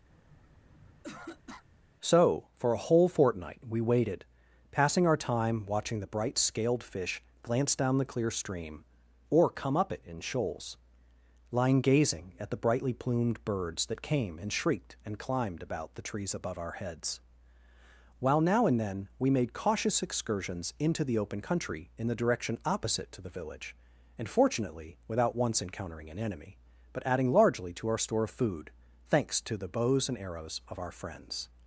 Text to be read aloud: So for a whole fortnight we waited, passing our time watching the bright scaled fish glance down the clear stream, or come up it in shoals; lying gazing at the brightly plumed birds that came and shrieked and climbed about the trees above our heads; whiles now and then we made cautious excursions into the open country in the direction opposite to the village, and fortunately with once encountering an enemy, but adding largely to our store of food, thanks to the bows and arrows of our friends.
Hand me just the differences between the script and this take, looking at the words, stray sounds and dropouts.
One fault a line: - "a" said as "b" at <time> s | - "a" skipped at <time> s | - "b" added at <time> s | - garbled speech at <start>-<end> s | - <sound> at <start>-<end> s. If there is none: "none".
- throat clearing at 0.1-1.7 s
- "whiles" said as "while" at 18.2 s
- "with" said as "without" at 25.1 s